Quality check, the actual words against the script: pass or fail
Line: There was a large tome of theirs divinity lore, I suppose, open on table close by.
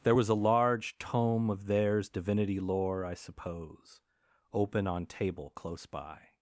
pass